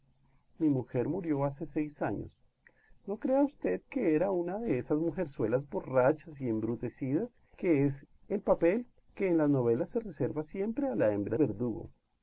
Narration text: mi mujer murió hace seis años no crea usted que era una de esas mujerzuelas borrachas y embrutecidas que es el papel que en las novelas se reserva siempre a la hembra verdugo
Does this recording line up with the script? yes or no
yes